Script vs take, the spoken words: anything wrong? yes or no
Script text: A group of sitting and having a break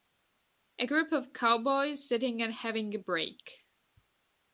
yes